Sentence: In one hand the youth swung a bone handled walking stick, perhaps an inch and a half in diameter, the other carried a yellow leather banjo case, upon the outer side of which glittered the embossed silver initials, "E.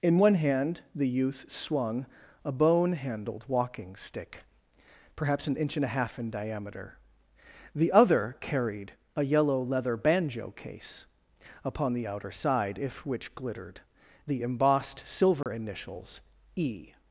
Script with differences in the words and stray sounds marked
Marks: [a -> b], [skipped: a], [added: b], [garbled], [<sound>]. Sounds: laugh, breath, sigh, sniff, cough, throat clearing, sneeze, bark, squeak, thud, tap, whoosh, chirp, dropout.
In one hand the youth swung a bone handled walking stick, perhaps an inch and a half in diameter, the other carried a yellow leather banjo case, upon the outer side [of -> if] which glittered the embossed silver [dropout] initials, "E.